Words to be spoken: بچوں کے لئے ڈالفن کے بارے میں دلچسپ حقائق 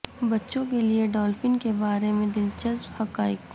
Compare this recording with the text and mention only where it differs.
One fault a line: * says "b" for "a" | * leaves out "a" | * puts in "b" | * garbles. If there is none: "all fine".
all fine